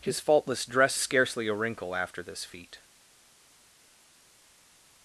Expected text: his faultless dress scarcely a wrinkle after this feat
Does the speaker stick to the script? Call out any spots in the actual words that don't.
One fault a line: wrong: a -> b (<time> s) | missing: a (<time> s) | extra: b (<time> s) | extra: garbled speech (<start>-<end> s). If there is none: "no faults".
no faults